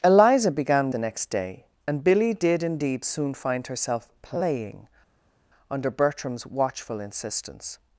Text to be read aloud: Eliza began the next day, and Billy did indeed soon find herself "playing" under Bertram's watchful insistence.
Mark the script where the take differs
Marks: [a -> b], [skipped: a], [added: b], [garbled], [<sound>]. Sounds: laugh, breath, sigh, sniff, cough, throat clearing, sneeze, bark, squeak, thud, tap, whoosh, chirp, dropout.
Eliza began the next day, and Billy did indeed soon find herself "playing" under Bertram's watchful insistence.